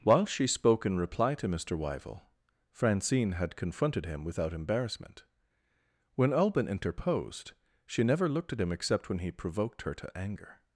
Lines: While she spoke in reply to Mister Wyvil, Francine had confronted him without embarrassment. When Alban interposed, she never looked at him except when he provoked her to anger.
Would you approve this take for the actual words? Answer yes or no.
yes